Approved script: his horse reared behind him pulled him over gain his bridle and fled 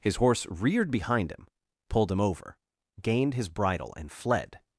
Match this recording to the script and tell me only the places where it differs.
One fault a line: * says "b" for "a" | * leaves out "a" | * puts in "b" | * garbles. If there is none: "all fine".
* says "gained" for "gain"